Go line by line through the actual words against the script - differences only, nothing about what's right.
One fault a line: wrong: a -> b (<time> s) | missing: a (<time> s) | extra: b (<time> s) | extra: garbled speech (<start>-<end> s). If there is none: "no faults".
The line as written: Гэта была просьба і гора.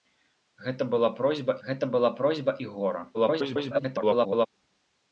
extra: гэта была просьба (1.7 s)
extra: garbled speech (3.1-4.5 s)